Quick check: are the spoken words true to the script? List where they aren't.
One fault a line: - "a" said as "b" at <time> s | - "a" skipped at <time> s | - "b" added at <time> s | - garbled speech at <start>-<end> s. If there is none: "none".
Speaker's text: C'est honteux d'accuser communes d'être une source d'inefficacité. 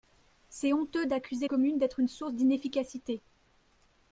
none